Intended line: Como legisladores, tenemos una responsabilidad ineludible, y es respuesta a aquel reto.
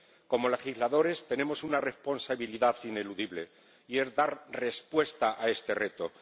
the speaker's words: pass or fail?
fail